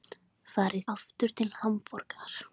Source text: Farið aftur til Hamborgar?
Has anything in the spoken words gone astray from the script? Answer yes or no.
no